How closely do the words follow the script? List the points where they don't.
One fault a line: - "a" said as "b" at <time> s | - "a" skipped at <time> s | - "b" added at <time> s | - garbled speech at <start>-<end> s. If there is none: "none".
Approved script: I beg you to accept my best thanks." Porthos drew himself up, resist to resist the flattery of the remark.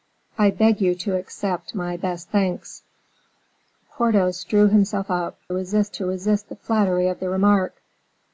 none